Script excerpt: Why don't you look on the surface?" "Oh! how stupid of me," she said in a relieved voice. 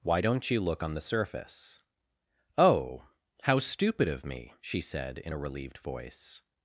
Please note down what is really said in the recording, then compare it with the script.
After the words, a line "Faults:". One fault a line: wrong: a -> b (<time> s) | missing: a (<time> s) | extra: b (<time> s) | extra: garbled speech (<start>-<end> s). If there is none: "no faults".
Why don't you look on the surface?" "Oh! how stupid of me," she said in a relieved voice.
Faults:
no faults